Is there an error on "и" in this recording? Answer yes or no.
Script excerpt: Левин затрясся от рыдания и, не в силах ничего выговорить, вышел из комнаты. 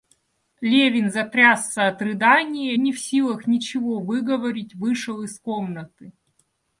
yes